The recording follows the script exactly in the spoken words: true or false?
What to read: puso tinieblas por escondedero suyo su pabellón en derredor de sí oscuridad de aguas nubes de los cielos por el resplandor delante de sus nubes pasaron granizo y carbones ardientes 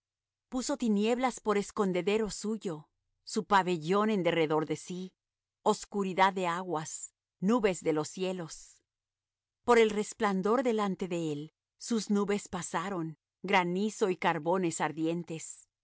false